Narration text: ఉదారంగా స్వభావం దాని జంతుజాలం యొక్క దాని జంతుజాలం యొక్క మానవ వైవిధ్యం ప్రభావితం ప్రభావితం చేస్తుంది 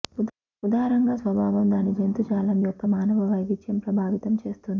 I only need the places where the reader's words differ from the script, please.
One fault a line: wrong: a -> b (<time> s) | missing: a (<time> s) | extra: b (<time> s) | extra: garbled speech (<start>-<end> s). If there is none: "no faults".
missing: దాని జంతుజాలం యొక్క (2.9 s)
missing: ప్రభావితం (4.3 s)